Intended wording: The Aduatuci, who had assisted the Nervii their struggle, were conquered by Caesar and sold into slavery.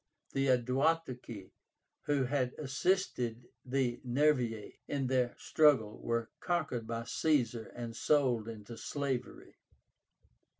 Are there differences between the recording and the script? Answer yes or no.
yes